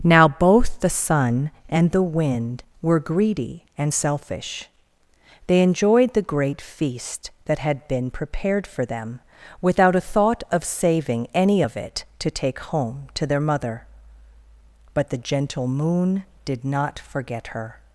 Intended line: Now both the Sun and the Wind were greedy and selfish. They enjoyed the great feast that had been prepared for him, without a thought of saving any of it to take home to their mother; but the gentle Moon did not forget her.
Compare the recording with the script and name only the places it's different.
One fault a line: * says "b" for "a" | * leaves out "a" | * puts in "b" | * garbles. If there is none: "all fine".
* says "them" for "him"